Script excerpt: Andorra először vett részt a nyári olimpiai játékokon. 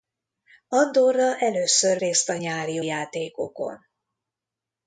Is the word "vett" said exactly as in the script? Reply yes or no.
no